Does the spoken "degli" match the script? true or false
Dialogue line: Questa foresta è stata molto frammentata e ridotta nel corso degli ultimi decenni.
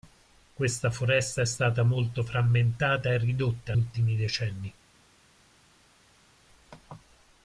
false